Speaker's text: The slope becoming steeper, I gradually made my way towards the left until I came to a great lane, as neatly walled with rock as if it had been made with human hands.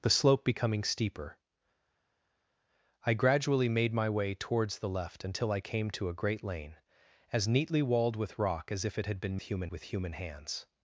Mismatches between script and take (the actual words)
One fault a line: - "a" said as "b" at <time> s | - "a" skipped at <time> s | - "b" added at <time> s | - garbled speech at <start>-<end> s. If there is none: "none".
- "made" said as "human" at 9.4 s